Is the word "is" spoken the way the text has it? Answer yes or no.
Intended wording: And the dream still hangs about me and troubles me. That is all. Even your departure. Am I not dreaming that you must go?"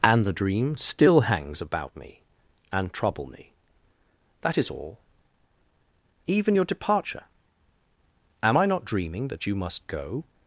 yes